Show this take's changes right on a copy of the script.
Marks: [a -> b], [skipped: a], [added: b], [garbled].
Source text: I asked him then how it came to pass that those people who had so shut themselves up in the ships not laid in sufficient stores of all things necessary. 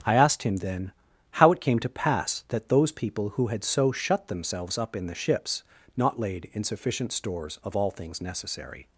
I asked him then how it came to pass that those people who had so shut themselves up in the ships not laid in sufficient stores of all things necessary.